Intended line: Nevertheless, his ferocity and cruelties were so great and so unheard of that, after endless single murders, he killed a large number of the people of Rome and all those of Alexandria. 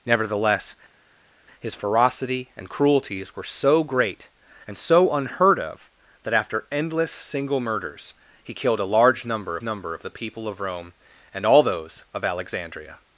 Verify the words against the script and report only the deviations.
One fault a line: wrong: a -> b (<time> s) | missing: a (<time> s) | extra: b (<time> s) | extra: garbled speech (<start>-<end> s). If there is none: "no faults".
extra: number (9.6 s)